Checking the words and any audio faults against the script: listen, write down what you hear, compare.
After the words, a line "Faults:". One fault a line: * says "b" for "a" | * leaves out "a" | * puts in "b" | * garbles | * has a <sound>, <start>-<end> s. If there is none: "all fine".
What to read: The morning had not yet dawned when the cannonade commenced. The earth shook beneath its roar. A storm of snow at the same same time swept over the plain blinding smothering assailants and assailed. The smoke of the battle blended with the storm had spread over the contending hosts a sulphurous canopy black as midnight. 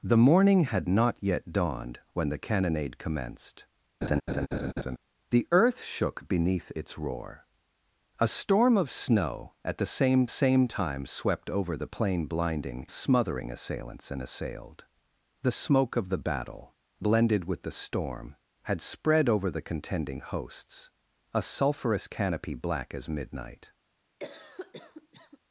The morning had not yet dawned when the cannonade commenced. The earth shook beneath its roar. A storm of snow at the same same time swept over the plain blinding smothering assailants and assailed. The smoke of the battle blended with the storm had spread over the contending hosts a sulphurous canopy black as midnight.
Faults:
* has a laugh, 4.0-5.0 s
* has a cough, 24.2-25.4 s